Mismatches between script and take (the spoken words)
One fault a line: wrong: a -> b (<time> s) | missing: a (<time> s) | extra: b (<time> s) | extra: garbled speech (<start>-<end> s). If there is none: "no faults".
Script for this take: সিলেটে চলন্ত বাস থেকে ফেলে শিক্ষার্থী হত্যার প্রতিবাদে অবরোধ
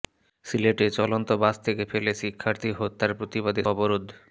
no faults